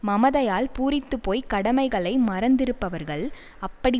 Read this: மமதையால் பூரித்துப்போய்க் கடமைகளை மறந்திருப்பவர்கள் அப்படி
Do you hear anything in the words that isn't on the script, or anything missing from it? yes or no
no